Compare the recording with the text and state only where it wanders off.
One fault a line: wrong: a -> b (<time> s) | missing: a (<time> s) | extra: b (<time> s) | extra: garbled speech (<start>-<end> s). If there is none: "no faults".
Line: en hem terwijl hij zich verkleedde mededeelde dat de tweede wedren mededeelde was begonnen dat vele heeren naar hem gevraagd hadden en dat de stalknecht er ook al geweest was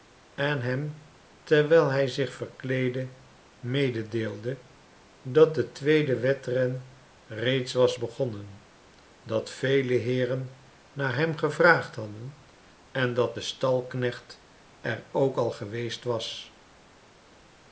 wrong: mededeelde -> reeds (7.2 s)